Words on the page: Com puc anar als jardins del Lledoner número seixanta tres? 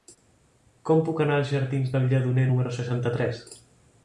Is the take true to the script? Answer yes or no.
yes